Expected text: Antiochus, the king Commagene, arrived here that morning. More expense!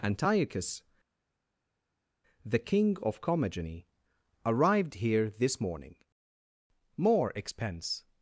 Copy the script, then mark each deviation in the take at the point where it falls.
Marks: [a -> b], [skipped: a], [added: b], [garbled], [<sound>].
Antiochus, the king [added: of] Commagene, arrived here [that -> this] morning. More expense!